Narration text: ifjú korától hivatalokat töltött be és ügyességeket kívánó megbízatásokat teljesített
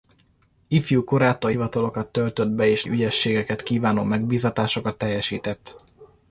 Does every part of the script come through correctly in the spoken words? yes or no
yes